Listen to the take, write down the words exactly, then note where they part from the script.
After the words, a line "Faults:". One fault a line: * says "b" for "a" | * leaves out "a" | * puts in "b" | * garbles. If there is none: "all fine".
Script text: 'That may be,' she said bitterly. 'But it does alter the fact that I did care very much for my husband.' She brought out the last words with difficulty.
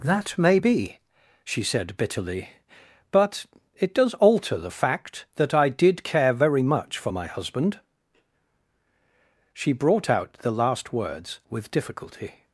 'That may be,' she said bitterly. 'But it does alter the fact that I did care very much for my husband.' She brought out the last words with difficulty.
Faults:
all fine